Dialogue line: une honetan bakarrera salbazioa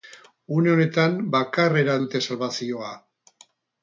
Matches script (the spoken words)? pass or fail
fail